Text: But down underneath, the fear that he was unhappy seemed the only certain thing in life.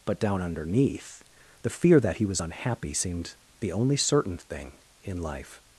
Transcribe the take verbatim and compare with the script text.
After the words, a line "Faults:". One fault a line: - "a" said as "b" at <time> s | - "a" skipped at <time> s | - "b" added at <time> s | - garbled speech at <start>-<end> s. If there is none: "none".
But down underneath, the fear that he was unhappy seemed the only certain thing in life.
Faults:
none